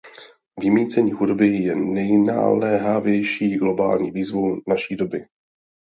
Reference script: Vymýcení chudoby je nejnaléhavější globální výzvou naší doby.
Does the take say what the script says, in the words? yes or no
yes